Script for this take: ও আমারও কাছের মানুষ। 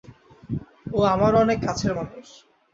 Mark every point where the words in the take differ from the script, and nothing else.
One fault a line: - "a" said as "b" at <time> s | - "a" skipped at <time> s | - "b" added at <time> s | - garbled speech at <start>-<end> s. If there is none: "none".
- "অনেক" added at 1.4 s